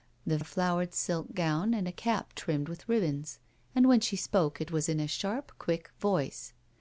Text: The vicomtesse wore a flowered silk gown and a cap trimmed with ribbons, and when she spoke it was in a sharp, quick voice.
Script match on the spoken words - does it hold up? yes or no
no